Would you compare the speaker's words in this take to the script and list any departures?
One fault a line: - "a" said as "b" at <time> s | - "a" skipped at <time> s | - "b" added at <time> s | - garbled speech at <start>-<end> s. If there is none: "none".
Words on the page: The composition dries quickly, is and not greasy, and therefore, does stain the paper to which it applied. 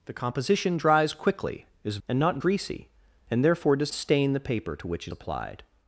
none